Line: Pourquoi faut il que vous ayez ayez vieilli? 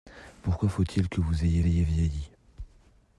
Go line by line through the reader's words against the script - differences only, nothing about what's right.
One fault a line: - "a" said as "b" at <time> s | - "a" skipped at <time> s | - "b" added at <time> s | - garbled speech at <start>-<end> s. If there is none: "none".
none